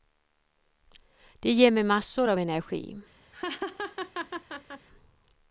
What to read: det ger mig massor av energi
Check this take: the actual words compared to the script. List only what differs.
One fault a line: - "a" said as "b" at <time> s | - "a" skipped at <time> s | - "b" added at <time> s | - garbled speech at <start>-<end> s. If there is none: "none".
none